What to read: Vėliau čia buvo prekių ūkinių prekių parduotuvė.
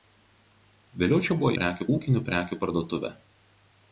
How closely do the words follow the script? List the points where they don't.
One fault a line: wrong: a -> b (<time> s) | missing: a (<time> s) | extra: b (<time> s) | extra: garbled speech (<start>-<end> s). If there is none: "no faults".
no faults